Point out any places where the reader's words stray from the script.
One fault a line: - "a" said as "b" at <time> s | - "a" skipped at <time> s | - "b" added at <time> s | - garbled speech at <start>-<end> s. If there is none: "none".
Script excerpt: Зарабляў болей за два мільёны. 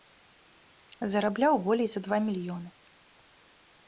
none